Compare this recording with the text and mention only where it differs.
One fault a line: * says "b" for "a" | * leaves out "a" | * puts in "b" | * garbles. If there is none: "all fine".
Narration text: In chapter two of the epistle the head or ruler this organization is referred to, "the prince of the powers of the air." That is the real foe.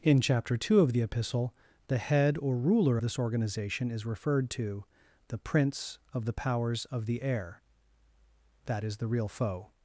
all fine